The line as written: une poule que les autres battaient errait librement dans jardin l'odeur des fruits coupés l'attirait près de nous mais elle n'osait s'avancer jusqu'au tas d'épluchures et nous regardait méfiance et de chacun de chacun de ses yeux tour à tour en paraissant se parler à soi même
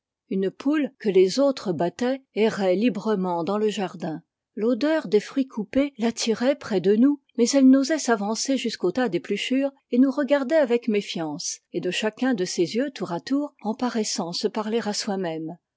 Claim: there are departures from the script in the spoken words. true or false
true